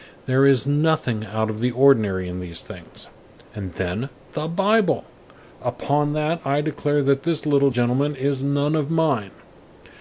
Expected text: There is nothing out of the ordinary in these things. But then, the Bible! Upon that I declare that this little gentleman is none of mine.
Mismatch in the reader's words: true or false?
true